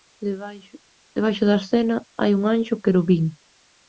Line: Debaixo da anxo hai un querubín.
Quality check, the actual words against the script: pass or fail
fail